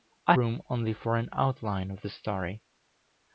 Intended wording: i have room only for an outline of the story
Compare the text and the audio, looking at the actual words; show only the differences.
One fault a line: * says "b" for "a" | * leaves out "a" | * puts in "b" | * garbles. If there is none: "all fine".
* leaves out "have"